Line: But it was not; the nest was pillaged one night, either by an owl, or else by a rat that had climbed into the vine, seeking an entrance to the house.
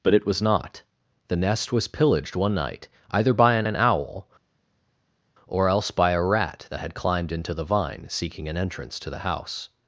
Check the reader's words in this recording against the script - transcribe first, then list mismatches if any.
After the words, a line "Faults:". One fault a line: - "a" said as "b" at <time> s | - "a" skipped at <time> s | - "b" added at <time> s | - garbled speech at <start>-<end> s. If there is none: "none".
But it was not; the nest was pillaged one night, either by an an owl, or else by a rat that had climbed into the vine, seeking an entrance to the house.
Faults:
- "an" added at 3.6 s